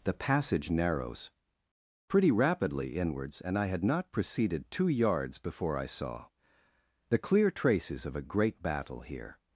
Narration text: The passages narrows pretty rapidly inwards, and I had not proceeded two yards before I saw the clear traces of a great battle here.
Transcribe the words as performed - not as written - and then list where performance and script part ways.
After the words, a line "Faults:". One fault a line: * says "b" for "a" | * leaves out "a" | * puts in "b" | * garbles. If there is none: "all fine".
The passage narrows pretty rapidly inwards, and I had not proceeded two yards before I saw the clear traces of a great battle here.
Faults:
* says "passage" for "passages"